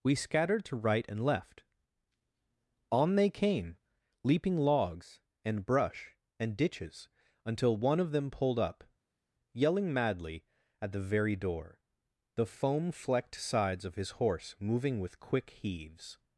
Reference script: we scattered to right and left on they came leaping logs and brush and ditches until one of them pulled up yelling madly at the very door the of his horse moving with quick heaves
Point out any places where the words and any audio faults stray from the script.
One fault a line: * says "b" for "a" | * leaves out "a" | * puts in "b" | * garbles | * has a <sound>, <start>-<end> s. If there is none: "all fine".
* puts in "foam flecked sides"